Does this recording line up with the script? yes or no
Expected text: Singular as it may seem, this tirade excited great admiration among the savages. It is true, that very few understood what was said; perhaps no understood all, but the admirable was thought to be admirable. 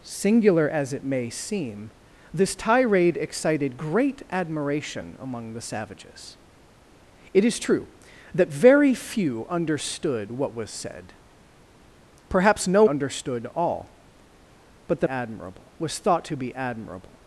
yes